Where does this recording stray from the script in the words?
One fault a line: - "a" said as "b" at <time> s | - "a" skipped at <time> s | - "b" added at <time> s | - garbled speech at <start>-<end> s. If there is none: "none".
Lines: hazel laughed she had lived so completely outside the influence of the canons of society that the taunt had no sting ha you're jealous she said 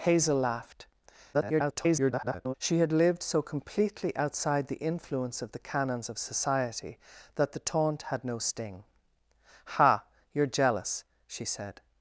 - garbled speech at 1.3-2.5 s